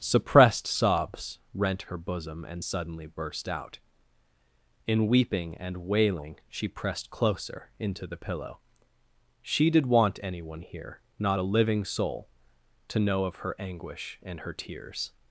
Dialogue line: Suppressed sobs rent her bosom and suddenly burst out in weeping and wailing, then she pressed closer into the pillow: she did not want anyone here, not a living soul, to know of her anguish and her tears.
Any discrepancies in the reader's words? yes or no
yes